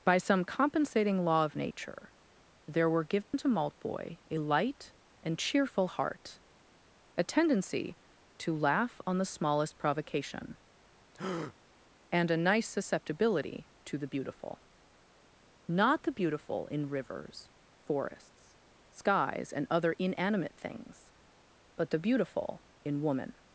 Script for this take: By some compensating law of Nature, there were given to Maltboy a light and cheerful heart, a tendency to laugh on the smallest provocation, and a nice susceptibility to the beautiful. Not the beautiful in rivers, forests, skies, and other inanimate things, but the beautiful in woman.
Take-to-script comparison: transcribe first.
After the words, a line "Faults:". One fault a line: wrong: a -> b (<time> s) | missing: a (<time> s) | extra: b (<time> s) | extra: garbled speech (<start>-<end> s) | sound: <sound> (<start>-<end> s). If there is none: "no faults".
By some compensating law of Nature, there were given to Maltboy a light and cheerful heart, a tendency to laugh on the smallest provocation, and a nice susceptibility to the beautiful. Not the beautiful in rivers, forests, skies, and other inanimate things, but the beautiful in woman.
Faults:
sound: dropout (3.2-3.3 s)
sound: breath (11.1-11.6 s)